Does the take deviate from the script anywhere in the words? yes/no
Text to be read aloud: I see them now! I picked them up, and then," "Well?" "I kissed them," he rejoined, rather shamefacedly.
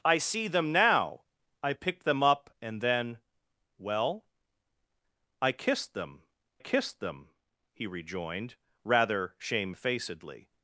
yes